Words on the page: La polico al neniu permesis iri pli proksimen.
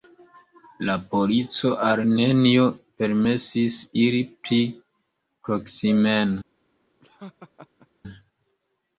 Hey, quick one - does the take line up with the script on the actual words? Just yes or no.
yes